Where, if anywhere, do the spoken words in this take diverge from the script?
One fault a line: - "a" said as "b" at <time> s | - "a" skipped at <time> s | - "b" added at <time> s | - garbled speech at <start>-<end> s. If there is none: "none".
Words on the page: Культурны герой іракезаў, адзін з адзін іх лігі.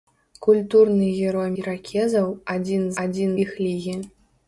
none